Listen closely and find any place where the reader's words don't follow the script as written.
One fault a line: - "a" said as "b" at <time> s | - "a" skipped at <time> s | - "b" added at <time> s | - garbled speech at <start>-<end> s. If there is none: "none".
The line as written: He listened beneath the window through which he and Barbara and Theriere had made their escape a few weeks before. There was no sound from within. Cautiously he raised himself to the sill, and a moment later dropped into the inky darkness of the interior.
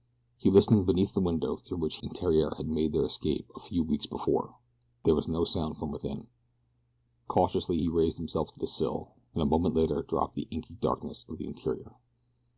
- "he" skipped at 2.0 s
- "Barbara and" skipped at 2.1 s
- "into" skipped at 10.4 s